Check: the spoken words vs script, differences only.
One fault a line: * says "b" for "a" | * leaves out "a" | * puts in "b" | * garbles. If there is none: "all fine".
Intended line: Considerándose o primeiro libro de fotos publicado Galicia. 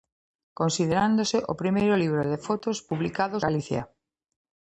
all fine